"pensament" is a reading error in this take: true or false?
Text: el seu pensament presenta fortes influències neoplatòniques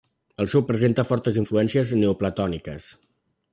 true